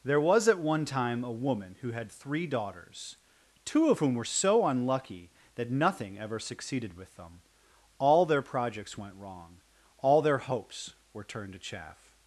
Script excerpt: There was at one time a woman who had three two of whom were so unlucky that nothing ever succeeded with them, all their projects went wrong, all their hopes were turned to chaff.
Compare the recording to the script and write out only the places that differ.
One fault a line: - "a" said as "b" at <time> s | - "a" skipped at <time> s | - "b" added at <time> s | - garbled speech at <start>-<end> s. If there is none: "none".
- "daughters" added at 2.5 s